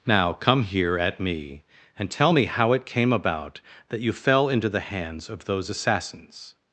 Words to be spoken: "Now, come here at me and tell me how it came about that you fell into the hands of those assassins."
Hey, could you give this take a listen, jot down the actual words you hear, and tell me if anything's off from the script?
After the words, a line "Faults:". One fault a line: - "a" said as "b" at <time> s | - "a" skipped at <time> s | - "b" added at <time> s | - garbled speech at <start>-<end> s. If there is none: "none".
"Now, come here at me and tell me how it came about that you fell into the hands of those assassins."
Faults:
none